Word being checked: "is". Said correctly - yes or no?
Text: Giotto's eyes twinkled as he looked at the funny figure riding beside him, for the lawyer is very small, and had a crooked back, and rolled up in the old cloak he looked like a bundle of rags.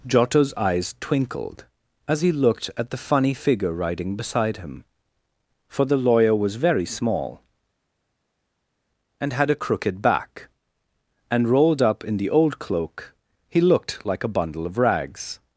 no